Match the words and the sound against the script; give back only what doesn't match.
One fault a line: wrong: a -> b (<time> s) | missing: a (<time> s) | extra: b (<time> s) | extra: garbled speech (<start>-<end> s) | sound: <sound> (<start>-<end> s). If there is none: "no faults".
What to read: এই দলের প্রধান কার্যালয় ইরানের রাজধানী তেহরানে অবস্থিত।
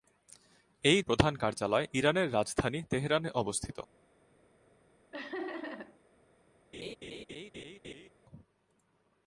missing: দলের (1.0 s)
sound: laugh (5.1-6.0 s)
sound: laugh (6.7-8.1 s)